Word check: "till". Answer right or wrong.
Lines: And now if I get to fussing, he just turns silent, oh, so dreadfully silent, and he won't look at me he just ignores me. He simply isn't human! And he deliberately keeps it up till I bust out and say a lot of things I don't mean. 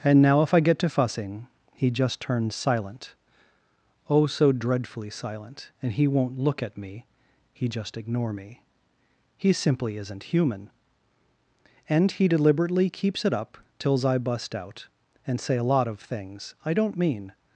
wrong